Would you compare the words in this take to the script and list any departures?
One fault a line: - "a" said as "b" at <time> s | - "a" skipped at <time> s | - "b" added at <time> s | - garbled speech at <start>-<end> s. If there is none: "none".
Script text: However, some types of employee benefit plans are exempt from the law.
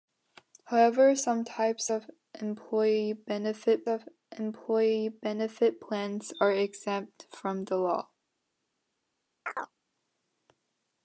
- "of employee benefit" added at 3.9 s